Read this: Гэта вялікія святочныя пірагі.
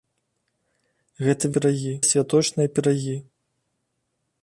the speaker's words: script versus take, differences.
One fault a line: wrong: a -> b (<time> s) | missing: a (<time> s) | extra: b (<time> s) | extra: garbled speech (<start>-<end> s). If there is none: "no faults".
wrong: вялікія -> пірагі (1.6 s)